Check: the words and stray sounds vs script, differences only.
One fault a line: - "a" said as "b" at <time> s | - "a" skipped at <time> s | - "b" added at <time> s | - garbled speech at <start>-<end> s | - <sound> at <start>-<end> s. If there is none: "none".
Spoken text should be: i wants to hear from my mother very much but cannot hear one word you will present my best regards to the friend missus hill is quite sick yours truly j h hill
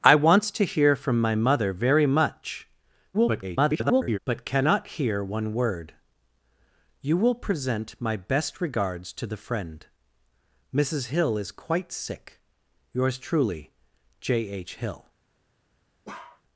- garbled speech at 3.1-4.2 s
- bark at 16.0-16.4 s